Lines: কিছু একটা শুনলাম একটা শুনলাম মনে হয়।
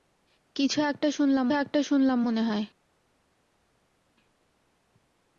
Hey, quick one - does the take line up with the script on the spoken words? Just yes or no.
yes